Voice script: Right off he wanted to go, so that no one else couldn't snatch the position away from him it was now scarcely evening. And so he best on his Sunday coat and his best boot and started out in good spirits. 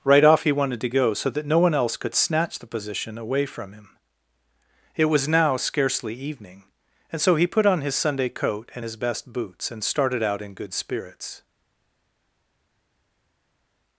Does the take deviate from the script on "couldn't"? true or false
true